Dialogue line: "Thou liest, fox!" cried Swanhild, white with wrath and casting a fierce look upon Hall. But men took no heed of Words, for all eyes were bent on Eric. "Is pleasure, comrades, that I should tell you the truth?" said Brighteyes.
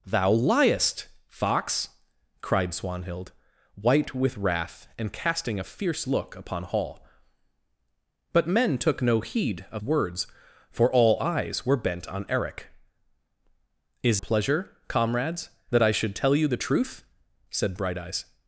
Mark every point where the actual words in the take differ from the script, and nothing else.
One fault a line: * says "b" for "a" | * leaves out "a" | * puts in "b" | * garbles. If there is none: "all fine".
all fine